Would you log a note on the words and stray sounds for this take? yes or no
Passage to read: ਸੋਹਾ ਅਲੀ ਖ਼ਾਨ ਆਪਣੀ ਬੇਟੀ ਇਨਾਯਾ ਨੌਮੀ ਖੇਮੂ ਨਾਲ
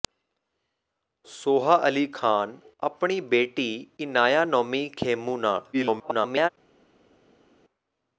yes